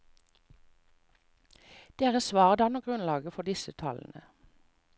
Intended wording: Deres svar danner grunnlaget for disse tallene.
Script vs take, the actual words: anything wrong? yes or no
no